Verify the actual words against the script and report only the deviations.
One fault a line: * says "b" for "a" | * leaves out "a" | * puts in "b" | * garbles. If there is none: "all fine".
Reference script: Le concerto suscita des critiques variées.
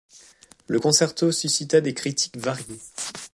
all fine